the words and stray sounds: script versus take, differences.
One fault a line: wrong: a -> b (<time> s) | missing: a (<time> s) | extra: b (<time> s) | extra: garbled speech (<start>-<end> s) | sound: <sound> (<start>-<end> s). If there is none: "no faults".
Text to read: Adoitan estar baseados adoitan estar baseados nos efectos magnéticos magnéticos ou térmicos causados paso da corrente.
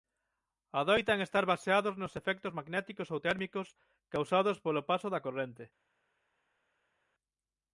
missing: adoitan estar baseados (1.9 s)
missing: magnéticos (3.1 s)
extra: polo (4.6 s)